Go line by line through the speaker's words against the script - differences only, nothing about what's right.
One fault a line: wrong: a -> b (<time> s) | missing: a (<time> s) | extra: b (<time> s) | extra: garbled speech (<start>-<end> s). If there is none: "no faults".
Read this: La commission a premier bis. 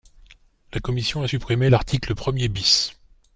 extra: supprimé l'article (1.3 s)